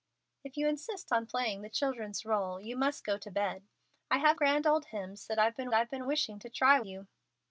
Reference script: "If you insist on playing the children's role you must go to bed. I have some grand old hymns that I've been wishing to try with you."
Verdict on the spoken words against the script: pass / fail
fail